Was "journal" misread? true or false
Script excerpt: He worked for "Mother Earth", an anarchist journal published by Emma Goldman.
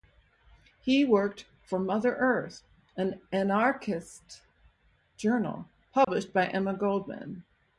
false